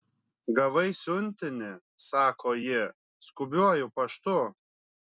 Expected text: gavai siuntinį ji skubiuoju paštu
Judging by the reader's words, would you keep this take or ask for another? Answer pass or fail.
fail